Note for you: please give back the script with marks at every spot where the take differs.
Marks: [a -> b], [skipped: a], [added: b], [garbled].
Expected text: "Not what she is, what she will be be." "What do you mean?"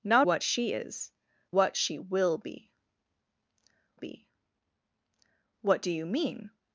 "Not what she is, what she will be be." "What do you mean?"